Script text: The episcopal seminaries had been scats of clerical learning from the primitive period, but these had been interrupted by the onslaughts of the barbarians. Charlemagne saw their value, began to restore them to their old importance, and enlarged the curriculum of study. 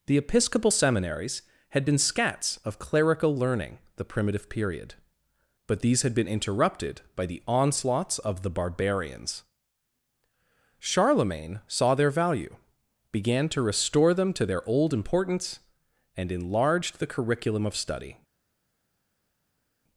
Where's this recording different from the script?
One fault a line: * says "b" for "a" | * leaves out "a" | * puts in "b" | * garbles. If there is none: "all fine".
* leaves out "from"